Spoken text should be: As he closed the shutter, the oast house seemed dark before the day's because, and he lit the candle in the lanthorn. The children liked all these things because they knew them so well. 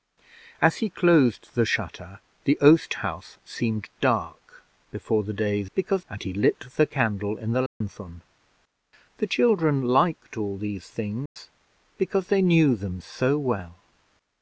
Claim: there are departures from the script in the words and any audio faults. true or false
true